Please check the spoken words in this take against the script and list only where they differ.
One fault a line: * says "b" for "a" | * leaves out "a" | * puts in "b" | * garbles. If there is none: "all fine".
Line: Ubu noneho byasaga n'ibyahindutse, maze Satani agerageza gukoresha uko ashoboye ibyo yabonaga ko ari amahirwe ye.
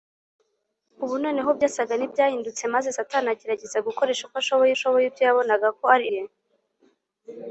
* puts in "ashoboye"
* leaves out "amahirwe"